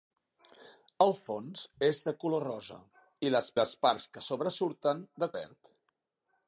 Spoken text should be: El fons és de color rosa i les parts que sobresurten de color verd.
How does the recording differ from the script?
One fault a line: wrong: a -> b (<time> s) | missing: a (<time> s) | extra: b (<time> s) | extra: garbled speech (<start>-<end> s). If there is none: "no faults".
extra: les (3.6 s)
missing: color (5.3 s)